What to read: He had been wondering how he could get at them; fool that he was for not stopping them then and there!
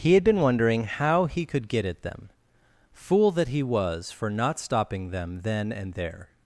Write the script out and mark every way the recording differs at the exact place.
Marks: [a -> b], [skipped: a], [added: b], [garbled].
He had been wondering how he could get at them; fool that he was for not stopping them then and there!